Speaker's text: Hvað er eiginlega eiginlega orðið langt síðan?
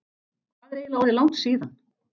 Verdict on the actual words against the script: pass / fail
fail